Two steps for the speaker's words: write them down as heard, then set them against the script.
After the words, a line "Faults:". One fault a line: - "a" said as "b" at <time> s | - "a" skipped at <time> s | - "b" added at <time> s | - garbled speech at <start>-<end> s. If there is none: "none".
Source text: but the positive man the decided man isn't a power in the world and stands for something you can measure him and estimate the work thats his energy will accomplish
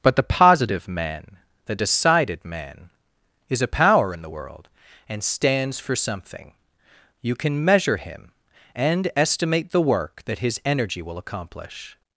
but the positive man the decided man is a power in the world and stands for something you can measure him and estimate the work that his energy will accomplish
Faults:
- "isn't" said as "is" at 3.5 s
- "thats" said as "that" at 10.3 s